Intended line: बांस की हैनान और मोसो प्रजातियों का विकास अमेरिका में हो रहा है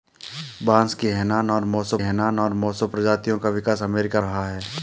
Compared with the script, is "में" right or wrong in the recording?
wrong